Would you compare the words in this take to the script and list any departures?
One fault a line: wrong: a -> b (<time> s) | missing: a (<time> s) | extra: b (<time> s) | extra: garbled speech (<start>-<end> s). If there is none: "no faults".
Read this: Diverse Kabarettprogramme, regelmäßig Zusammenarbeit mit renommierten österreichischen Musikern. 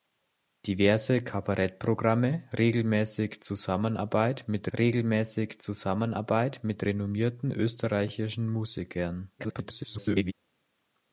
extra: regelmäßig Zusammenarbeit mit (4.8 s)
extra: garbled speech (9.4-10.3 s)